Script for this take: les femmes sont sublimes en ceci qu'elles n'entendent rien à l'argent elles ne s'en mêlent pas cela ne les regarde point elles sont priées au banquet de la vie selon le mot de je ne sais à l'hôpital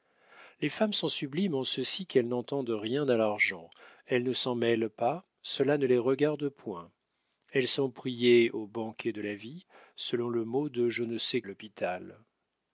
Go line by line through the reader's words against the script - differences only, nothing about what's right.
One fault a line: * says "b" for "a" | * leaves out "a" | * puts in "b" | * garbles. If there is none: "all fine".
all fine